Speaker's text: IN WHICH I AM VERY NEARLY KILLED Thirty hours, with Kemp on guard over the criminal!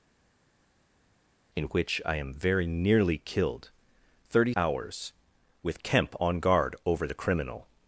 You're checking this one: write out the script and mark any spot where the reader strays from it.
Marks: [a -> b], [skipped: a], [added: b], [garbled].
IN WHICH I AM VERY NEARLY KILLED Thirty hours, with Kemp on guard over the criminal!